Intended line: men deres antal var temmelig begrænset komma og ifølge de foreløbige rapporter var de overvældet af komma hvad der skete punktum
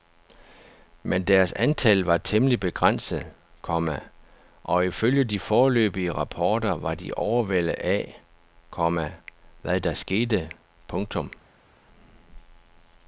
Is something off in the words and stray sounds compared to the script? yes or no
no